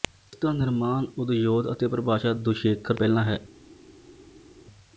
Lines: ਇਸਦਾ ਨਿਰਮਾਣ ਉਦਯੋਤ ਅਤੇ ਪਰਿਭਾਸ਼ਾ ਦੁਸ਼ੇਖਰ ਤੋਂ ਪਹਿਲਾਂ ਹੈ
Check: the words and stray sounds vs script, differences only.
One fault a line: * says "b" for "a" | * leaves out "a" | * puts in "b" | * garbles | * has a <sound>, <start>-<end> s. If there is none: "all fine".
* leaves out "ਤੋਂ"